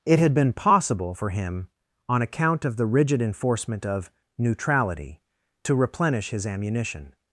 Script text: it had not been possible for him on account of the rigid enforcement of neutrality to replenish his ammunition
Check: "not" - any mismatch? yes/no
yes